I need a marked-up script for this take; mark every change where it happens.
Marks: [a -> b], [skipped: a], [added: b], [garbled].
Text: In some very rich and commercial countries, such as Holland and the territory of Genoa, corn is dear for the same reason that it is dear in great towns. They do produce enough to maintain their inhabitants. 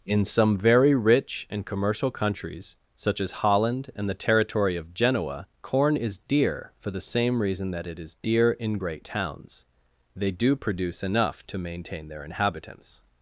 In some very rich and commercial countries, such as Holland and the territory of Genoa, corn is dear for the same reason that it is dear in great towns. They do produce enough to maintain their inhabitants.